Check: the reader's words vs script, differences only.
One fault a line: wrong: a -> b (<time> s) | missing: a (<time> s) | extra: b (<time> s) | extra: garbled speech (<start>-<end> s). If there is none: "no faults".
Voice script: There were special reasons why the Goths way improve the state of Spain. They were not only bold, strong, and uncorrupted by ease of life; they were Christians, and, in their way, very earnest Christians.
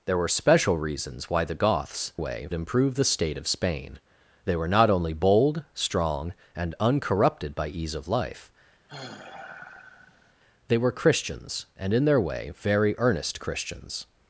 no faults